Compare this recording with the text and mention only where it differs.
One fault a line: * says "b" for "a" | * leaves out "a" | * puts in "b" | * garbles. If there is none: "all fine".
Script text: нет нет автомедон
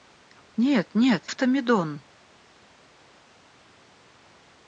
all fine